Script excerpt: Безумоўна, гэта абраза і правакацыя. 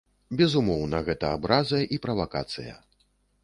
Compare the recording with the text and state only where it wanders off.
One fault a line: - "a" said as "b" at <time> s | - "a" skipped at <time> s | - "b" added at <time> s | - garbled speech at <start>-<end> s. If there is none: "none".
none